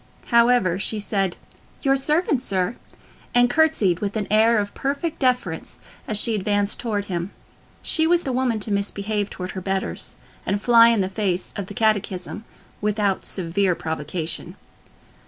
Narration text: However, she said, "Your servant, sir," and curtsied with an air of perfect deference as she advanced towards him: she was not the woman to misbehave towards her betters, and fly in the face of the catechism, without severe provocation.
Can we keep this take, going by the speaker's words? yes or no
no